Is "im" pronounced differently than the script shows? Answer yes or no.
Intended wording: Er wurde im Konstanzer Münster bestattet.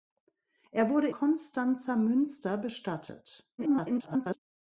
yes